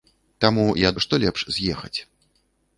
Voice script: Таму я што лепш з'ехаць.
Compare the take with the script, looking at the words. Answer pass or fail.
pass